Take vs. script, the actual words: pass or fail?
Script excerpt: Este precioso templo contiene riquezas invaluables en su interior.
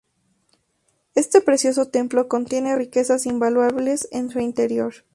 pass